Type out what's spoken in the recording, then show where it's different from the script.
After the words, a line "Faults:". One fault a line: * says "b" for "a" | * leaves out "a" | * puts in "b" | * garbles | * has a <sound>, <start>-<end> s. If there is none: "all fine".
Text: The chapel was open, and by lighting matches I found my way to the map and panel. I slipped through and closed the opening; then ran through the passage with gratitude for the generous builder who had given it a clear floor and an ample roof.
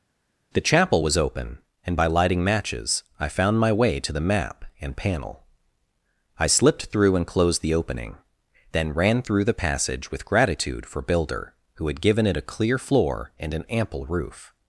The chapel was open, and by lighting matches I found my way to the map and panel. I slipped through and closed the opening; then ran through the passage with gratitude for builder who had given it a clear floor and an ample roof.
Faults:
* leaves out "the generous"